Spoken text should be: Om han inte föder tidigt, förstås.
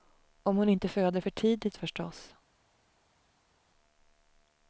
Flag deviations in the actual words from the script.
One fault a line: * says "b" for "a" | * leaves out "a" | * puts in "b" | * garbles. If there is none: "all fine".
* says "hon" for "han"
* puts in "för"